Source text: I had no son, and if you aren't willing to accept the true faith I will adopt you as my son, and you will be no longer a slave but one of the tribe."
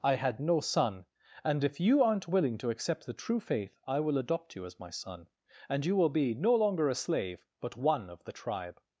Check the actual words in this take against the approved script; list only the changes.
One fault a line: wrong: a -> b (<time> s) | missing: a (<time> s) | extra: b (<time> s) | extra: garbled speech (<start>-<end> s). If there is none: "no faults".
no faults